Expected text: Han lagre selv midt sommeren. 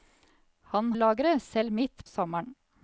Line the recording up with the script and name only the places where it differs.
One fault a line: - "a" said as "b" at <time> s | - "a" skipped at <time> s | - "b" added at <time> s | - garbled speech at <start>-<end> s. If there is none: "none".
none